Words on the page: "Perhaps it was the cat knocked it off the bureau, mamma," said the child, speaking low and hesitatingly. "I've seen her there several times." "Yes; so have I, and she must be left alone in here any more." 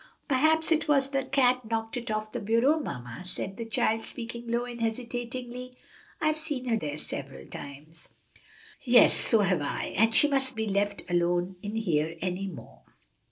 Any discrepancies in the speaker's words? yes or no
no